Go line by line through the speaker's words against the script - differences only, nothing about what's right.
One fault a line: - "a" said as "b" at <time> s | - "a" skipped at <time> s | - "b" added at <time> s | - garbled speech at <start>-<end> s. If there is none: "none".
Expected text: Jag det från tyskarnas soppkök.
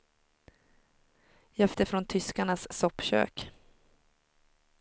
none